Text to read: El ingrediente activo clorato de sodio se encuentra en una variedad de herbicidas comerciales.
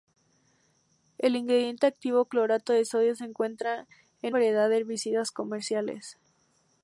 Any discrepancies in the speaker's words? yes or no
yes